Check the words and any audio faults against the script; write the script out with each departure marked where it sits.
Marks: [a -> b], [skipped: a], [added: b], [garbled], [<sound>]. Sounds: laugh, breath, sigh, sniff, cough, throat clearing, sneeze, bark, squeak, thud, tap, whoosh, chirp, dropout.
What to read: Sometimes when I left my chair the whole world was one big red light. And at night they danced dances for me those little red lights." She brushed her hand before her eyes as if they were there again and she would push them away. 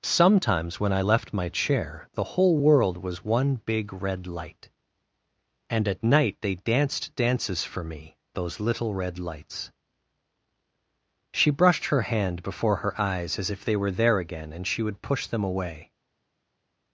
Sometimes when I left my chair the whole world was one big red light. And at night they danced dances for me those little red lights." She brushed her hand before her eyes as if they were there again and she would push them away.